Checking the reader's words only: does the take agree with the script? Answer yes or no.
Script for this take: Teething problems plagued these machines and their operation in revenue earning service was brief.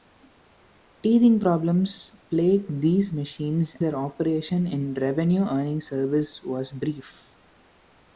no